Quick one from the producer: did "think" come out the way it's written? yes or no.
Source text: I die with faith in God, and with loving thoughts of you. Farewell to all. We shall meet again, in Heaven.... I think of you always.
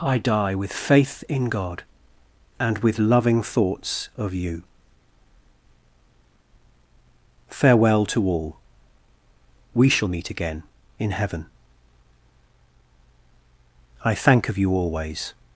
no